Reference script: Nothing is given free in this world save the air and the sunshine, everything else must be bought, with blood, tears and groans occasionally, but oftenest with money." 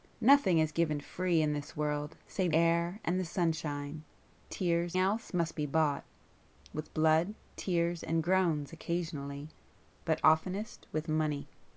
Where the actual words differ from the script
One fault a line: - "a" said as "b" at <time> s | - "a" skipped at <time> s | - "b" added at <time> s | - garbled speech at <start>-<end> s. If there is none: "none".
- "the" skipped at 2.5 s
- "everything" said as "tears" at 4.5 s